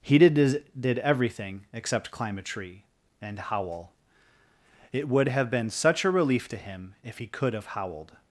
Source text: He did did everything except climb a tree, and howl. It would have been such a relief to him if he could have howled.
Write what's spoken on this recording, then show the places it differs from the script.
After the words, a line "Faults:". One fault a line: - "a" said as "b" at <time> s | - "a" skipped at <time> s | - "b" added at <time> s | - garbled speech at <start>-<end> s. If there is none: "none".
He did did everything except climb a tree, and howl. It would have been such a relief to him if he could have howled.
Faults:
none